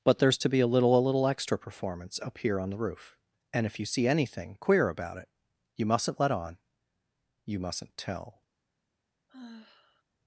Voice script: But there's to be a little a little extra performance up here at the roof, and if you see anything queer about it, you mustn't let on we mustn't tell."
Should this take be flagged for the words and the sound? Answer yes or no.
yes